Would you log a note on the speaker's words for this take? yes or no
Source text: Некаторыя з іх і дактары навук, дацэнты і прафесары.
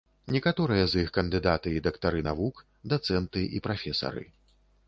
yes